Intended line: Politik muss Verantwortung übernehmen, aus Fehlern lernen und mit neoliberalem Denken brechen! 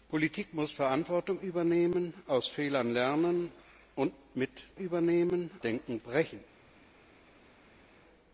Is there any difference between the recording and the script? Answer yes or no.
yes